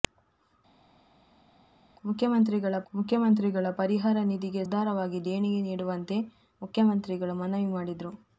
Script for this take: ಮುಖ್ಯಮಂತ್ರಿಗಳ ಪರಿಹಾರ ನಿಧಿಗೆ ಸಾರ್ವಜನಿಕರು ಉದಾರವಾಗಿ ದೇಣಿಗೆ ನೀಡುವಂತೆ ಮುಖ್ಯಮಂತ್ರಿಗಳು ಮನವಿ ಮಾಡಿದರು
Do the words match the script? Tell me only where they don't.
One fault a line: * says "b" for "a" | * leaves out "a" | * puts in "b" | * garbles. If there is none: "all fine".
* puts in "ಮುಖ್ಯಮಂತ್ರಿಗಳ"
* leaves out "ಸಾರ್ವಜನಿಕರು"